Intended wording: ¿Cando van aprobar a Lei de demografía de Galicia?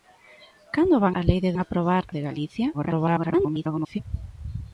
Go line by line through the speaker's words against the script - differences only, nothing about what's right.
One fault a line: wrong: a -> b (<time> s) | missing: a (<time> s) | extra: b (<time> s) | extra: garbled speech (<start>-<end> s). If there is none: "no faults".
missing: aprobar (1.1 s)
wrong: demografía -> aprobar (1.6 s)
extra: garbled speech (2.7-4.0 s)